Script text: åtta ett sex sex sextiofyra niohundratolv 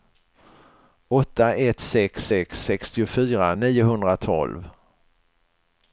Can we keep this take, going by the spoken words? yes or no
yes